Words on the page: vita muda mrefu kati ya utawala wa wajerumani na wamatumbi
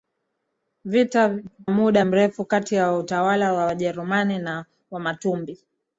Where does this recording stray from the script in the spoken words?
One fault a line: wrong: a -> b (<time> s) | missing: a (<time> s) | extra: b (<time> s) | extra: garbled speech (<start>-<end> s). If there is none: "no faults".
no faults